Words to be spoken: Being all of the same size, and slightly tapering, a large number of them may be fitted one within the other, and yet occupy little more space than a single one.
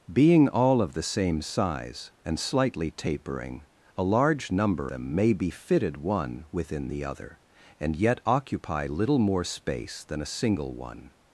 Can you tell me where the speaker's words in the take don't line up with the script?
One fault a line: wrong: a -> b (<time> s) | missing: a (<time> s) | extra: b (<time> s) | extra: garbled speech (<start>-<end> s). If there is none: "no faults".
missing: of (4.9 s)